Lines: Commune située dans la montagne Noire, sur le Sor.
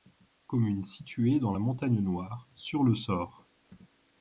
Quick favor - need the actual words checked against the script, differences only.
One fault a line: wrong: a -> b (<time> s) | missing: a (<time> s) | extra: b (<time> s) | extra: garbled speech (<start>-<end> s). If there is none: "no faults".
no faults